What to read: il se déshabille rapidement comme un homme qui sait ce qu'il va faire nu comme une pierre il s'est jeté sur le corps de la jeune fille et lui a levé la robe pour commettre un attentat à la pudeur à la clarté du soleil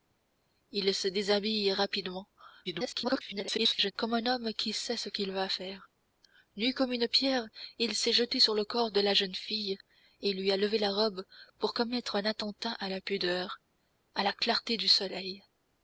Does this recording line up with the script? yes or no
no